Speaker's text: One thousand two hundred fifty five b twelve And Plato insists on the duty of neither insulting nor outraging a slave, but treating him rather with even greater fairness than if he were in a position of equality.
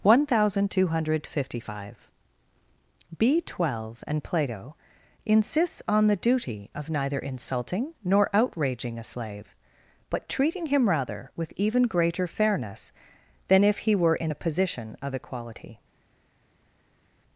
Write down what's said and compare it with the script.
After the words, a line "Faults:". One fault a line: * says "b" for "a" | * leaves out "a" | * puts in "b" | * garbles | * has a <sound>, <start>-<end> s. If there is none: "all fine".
One thousand two hundred fifty five b twelve And Plato insists on the duty of neither insulting nor outraging a slave, but treating him rather with even greater fairness than if he were in a position of equality.
Faults:
all fine